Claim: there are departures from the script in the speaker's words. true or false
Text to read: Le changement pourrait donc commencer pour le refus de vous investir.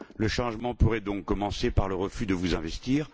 true